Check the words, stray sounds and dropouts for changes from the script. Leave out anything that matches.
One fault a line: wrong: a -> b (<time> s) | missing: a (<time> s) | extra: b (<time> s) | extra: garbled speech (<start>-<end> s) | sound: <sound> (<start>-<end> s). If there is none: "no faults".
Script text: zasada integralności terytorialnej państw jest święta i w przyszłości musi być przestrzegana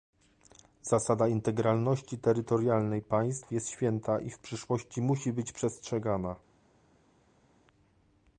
no faults